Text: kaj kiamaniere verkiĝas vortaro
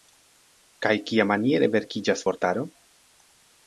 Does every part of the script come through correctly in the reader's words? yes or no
yes